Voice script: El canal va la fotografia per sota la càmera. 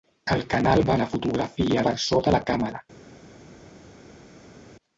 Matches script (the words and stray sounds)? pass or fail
pass